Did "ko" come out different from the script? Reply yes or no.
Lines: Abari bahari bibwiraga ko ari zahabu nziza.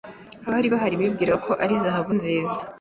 no